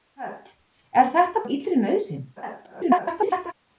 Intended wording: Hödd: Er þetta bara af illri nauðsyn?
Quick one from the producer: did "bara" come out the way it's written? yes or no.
no